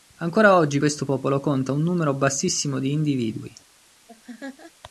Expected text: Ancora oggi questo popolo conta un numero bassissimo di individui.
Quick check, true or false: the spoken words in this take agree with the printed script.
true